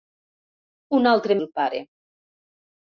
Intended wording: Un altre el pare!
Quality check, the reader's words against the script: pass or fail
pass